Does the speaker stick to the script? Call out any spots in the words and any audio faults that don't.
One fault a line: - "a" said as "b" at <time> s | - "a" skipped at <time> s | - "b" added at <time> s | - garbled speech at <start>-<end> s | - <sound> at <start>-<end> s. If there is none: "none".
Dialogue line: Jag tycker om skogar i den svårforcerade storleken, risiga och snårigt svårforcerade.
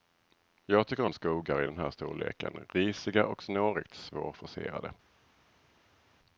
- "svårforcerade" said as "här" at 1.8 s